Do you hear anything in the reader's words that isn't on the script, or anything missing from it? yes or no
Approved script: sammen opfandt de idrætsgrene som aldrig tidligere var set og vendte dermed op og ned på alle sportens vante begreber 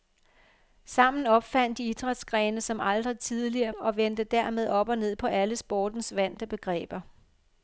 yes